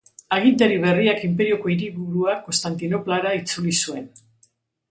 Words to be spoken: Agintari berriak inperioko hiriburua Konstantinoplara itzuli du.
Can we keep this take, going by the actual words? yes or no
no